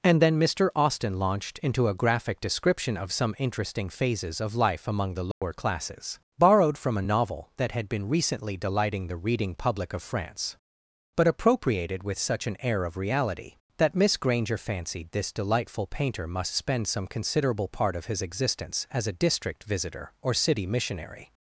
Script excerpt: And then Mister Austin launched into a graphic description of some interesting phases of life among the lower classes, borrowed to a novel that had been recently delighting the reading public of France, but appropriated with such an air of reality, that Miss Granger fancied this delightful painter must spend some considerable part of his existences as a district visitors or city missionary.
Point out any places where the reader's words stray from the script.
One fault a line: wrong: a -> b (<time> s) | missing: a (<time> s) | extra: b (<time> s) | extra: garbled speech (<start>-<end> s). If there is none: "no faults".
wrong: to -> from (6.8 s)
wrong: existences -> existence (18.2 s)
wrong: visitors -> visitor (19.6 s)